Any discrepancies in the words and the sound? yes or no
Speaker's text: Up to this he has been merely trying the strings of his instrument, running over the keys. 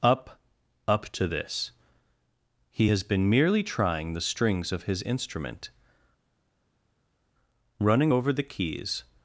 yes